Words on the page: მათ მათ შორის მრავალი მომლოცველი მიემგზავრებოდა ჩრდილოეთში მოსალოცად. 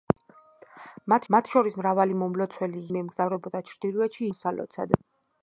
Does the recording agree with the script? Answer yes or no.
yes